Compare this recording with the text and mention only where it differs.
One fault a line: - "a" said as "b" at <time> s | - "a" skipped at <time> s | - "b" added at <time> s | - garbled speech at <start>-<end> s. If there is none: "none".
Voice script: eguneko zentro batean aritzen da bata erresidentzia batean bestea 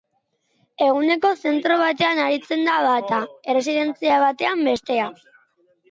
none